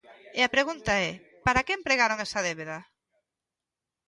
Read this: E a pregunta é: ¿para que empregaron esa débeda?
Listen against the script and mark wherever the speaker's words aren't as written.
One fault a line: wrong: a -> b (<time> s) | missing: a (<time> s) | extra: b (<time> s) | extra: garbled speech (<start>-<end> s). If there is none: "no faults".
no faults